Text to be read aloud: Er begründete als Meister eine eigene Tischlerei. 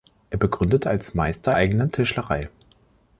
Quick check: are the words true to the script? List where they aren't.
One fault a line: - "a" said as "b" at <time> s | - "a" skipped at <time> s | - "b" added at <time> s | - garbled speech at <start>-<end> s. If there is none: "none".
- "eine" skipped at 1.5 s